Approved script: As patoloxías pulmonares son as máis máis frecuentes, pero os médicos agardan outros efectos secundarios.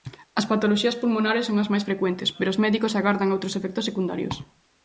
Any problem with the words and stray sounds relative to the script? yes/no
yes